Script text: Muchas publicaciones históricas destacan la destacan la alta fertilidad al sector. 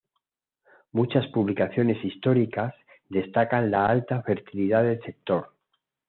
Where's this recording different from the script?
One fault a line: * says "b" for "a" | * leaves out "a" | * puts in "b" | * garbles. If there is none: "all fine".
* leaves out "destacan la"
* says "del" for "al"